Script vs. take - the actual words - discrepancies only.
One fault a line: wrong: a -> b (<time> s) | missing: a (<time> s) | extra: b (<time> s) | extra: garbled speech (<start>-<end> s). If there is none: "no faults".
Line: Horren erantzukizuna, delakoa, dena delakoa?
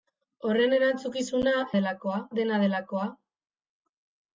no faults